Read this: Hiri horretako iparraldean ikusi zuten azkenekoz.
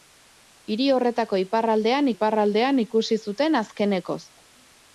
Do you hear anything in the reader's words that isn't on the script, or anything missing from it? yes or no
yes